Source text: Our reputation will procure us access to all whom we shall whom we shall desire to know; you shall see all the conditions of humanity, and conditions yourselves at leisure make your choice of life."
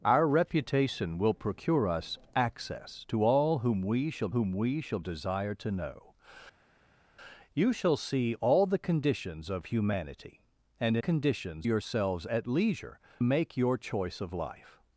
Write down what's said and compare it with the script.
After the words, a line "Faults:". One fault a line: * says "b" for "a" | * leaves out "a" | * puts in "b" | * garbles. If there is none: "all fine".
Our reputation will procure us access to all whom we shall whom we shall desire to know; you shall see all the conditions of humanity, and conditions yourselves at leisure make your choice of life."
Faults:
all fine